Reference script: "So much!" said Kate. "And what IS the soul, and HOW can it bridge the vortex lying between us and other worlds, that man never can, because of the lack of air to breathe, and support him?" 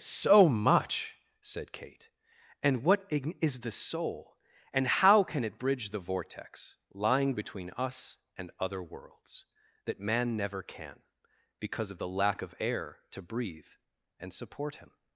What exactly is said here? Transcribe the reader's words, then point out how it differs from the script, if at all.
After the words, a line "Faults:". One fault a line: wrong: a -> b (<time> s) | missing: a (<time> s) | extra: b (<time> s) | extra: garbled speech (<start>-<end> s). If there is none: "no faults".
"So much!" said Kate. "And what IS the soul, and HOW can it bridge the vortex lying between us and other worlds, that man never can, because of the lack of air to breathe, and support him?"
Faults:
no faults